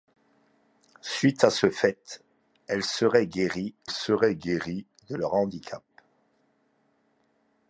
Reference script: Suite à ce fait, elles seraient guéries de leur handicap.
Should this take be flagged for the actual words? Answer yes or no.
yes